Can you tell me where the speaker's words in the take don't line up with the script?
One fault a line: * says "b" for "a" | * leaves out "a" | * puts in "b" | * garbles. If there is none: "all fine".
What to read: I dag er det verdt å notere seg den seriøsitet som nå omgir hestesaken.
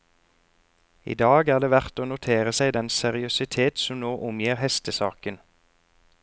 all fine